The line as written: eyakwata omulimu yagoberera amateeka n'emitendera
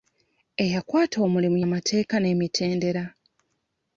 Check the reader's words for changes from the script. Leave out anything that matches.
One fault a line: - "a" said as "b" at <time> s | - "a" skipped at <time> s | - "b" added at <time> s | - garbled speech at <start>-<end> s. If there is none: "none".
- "yagoberera" skipped at 1.6 s